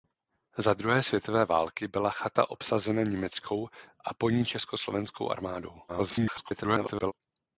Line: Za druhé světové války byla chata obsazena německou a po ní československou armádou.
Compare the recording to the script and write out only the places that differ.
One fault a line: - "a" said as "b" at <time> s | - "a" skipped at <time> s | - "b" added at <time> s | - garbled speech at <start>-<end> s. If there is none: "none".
- garbled speech at 5.9-7.1 s